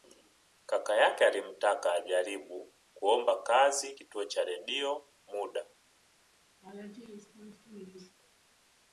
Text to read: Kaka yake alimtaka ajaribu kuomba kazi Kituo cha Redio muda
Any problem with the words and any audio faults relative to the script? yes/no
yes